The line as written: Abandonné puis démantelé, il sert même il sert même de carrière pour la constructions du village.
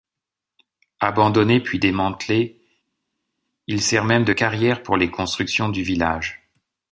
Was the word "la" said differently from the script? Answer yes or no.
yes